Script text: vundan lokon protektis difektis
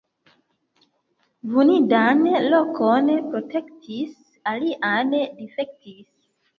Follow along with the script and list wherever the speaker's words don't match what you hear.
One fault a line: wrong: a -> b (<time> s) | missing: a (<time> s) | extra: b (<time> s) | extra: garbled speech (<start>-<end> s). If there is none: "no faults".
extra: alian (4.5 s)